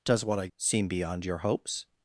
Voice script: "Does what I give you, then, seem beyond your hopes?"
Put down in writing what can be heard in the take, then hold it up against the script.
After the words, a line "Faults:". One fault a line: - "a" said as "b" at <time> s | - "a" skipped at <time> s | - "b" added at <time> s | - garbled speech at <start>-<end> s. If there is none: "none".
"Does what I seem beyond your hopes?"
Faults:
- "give you then" skipped at 0.5 s